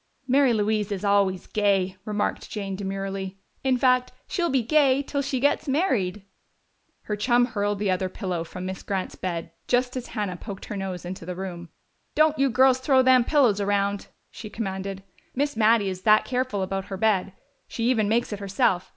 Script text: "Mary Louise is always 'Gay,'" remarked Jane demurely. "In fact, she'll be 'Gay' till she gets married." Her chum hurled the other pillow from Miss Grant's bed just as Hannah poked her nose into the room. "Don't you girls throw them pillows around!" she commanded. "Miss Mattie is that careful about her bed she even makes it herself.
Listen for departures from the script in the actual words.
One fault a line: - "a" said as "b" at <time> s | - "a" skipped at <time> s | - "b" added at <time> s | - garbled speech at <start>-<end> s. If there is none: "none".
none